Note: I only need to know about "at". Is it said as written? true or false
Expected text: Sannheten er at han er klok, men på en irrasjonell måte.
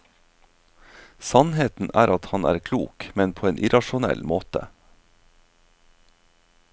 true